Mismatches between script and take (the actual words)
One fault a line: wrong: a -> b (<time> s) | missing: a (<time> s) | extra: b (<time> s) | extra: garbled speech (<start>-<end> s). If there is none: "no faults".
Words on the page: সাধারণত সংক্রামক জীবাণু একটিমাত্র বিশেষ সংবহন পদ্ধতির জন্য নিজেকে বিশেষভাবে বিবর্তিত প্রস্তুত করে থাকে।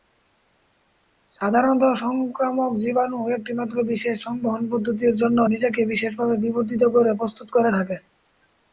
extra: করে (6.9 s)